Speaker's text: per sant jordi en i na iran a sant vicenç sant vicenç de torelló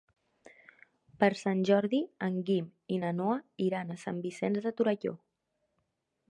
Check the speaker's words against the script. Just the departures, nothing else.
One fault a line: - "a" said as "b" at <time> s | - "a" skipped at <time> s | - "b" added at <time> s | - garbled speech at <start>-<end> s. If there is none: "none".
- "guim" added at 2.5 s
- "noa" added at 3.2 s
- "sant vicenç" skipped at 4.6 s